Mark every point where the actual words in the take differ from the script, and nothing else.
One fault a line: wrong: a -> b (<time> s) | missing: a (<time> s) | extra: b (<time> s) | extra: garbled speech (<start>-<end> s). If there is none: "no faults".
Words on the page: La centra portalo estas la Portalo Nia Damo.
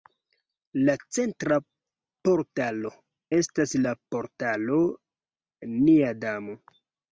no faults